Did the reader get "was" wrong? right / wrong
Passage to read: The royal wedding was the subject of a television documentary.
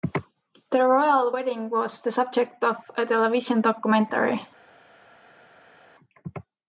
right